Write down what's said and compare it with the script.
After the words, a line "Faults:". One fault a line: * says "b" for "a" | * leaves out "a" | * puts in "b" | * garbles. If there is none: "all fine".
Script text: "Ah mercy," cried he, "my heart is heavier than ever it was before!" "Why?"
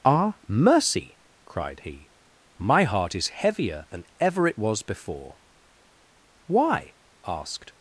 "Ah mercy," cried he, "my heart is heavier than ever it was before!" "Why?" asked
Faults:
* puts in "asked"